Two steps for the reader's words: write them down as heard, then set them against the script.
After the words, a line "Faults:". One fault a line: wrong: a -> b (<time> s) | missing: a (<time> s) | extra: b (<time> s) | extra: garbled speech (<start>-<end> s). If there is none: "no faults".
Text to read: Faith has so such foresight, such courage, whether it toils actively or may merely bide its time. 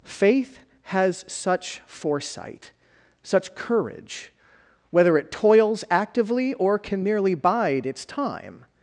Faith has such foresight, such courage, whether it toils actively or can merely bide its time.
Faults:
missing: so (1.2 s)
wrong: may -> can (6.8 s)